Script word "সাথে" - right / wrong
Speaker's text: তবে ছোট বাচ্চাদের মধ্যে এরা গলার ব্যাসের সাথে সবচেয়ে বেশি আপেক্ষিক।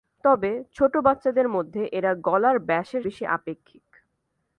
wrong